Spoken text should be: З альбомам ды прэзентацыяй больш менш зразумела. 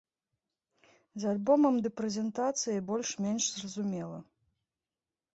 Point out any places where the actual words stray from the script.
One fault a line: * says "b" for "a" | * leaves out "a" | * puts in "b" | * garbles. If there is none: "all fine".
all fine